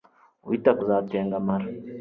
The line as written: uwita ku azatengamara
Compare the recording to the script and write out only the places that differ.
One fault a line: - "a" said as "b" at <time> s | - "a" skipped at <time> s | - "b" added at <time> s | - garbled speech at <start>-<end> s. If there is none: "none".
none